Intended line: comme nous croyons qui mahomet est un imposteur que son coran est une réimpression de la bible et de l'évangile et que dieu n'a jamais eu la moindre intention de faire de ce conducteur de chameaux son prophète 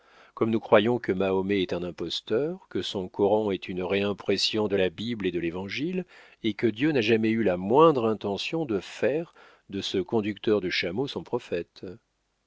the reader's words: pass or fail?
fail